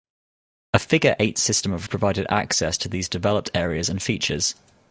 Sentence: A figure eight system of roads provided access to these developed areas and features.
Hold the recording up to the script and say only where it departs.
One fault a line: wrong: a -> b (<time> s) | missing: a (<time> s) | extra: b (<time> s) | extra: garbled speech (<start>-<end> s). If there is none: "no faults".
missing: roads (1.9 s)